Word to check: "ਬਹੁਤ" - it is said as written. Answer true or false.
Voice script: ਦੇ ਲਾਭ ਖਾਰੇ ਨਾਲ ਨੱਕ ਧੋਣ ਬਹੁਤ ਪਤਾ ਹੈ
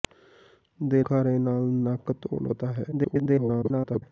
false